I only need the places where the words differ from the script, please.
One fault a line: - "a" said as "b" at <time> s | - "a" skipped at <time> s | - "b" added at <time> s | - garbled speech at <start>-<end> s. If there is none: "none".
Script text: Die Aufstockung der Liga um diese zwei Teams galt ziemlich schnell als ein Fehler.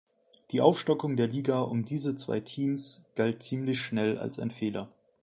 none